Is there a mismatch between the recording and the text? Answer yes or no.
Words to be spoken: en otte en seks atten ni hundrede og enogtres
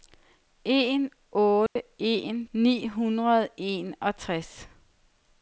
yes